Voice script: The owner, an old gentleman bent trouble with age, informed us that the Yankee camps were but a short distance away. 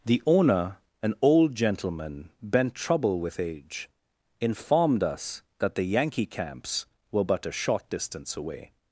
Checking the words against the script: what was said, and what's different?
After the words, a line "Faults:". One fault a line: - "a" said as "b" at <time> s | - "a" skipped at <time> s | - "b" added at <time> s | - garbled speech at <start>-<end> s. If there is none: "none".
The owner, an old gentleman bent trouble with age, informed us that the Yankee camps were but a short distance away.
Faults:
none